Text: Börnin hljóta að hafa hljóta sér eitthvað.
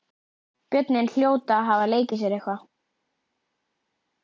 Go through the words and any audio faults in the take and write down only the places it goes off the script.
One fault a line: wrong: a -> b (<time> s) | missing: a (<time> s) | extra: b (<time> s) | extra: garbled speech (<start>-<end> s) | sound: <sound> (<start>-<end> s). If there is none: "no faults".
wrong: hljóta -> leikið (1.9 s)